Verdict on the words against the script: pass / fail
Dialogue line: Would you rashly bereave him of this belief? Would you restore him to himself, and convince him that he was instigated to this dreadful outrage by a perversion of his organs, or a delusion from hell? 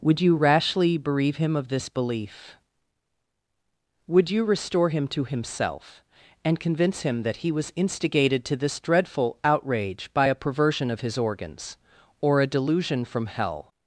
pass